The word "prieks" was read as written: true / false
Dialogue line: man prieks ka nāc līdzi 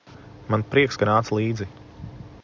true